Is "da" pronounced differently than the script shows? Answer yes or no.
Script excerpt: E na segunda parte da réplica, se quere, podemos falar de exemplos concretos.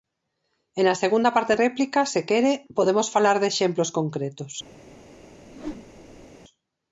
yes